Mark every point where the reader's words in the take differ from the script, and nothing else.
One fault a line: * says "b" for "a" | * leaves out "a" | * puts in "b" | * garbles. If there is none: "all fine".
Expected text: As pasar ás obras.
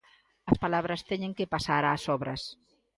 * puts in "palabras teñen que"